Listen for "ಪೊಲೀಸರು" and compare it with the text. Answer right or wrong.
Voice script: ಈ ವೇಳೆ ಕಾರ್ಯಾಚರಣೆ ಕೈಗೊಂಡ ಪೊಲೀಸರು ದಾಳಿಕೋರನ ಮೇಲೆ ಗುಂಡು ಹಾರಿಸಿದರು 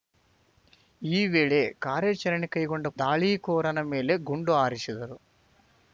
wrong